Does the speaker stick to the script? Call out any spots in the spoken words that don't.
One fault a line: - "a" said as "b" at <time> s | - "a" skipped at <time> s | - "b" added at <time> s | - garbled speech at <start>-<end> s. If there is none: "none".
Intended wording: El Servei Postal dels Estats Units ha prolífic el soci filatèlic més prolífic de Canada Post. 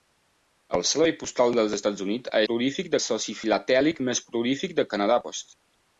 none